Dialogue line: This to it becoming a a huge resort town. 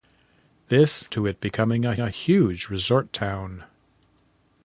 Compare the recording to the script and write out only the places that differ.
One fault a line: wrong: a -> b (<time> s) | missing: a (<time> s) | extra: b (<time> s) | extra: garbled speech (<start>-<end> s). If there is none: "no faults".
no faults